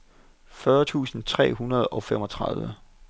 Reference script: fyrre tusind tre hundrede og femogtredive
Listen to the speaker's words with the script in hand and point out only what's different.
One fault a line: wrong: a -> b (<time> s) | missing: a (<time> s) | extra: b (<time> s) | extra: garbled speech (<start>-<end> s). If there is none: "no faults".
no faults